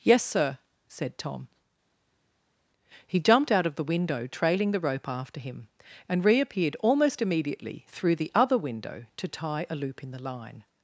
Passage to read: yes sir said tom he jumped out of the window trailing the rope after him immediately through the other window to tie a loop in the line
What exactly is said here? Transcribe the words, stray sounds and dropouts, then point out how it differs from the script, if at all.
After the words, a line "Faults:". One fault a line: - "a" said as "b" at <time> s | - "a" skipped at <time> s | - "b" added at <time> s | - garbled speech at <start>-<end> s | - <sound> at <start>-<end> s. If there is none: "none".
yes sir said tom he jumped out of the window trailing the rope after him and reappeared almost immediately through the other window to tie a loop in the line
Faults:
- "and reappeared almost" added at 6.1 s